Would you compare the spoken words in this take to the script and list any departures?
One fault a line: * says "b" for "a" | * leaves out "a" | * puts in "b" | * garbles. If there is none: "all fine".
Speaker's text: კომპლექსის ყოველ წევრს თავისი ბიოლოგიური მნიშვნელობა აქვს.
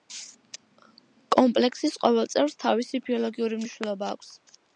all fine